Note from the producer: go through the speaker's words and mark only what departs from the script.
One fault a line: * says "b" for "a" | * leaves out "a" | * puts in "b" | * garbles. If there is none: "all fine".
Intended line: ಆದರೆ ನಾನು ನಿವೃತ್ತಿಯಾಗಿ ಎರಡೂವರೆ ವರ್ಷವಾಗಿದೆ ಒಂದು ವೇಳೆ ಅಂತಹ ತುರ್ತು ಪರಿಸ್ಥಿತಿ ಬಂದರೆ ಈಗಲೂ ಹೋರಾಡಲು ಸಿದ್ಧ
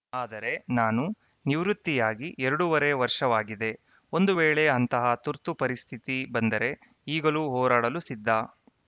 all fine